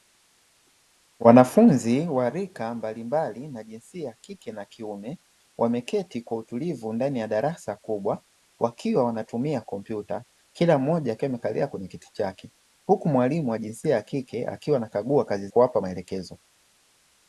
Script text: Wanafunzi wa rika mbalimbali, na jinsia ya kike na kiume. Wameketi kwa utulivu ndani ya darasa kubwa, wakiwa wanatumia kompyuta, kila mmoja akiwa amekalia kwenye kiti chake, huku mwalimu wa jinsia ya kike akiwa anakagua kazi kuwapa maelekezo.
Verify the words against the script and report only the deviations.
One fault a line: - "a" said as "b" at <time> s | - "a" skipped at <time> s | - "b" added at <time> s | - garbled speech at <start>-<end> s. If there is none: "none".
none